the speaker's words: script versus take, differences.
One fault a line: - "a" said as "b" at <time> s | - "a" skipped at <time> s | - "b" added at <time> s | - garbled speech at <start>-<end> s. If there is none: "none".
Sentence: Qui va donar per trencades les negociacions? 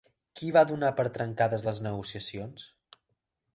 none